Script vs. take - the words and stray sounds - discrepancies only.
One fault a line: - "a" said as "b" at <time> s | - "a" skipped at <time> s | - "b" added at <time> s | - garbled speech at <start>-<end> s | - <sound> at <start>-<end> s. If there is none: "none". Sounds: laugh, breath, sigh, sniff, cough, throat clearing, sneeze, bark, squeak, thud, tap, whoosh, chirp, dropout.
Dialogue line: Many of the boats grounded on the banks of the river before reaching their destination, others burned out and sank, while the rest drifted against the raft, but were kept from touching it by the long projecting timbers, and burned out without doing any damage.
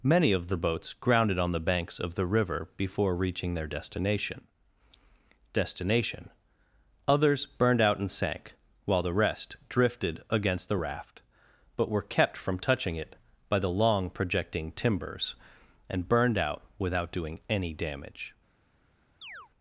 - "destination" added at 5.5 s
- chirp at 19.2-19.5 s